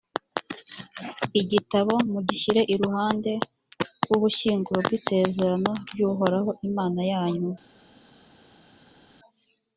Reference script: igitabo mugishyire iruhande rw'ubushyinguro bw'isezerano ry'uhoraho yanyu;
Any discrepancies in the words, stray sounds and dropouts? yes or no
yes